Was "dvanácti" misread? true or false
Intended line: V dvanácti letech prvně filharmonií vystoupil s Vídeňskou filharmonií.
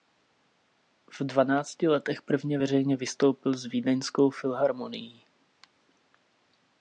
false